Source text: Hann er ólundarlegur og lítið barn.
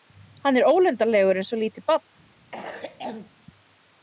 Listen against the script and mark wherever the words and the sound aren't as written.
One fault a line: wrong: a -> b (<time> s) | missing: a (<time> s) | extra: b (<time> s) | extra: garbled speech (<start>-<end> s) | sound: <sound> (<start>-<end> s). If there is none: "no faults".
extra: eins (1.4 s)
sound: cough (2.5-3.3 s)